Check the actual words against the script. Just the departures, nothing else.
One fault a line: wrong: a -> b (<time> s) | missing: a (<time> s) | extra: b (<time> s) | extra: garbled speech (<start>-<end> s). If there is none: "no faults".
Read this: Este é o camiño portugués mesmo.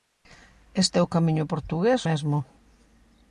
no faults